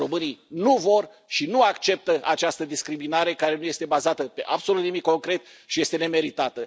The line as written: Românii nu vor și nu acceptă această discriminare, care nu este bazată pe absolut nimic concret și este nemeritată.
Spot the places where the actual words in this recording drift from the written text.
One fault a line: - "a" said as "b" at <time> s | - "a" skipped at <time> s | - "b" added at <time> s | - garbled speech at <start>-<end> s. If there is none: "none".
none